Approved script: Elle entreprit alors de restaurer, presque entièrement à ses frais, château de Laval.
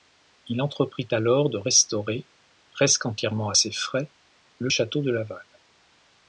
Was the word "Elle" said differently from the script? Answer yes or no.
yes